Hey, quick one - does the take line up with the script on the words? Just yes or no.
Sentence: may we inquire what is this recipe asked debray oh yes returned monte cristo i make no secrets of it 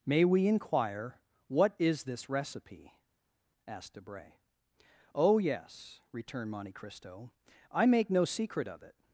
no